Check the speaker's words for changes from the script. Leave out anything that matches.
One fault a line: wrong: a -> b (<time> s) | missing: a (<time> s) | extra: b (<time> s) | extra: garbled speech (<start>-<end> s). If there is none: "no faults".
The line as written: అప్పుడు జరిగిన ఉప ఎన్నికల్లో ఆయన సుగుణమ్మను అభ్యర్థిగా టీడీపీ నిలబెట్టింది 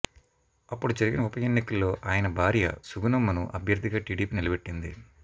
extra: భార్య (2.3 s)